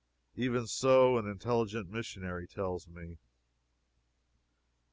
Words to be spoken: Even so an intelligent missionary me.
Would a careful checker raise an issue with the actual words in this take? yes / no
yes